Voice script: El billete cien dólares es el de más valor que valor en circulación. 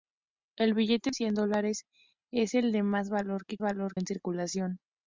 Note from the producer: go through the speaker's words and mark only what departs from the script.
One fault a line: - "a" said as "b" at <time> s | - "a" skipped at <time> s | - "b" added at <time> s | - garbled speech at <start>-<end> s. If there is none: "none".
none